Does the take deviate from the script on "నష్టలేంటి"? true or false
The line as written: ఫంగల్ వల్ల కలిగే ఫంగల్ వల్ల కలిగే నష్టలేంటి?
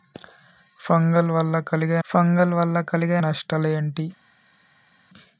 false